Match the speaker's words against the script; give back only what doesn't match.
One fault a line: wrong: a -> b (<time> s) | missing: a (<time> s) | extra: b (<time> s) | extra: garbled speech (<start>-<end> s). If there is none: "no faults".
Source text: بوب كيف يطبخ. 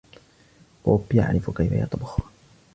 extra: يعرف (1.1 s)